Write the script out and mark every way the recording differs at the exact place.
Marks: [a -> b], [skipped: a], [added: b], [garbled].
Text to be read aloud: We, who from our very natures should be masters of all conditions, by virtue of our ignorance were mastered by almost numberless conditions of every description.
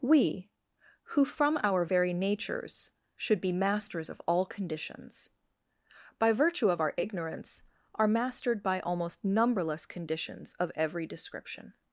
We, who from our very natures should be masters of all conditions, by virtue of our ignorance [were -> are] mastered by almost numberless conditions of every description.